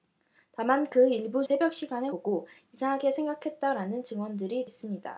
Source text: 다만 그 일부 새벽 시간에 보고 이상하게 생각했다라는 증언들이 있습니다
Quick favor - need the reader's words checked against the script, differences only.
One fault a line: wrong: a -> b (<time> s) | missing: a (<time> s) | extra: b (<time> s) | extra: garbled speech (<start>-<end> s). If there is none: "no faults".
no faults